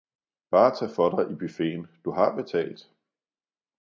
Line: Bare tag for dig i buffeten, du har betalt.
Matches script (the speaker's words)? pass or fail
pass